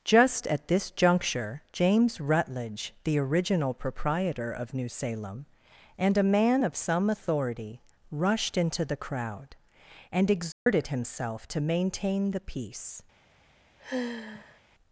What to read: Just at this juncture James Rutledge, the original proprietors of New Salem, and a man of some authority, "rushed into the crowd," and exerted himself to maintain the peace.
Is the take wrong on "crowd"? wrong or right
right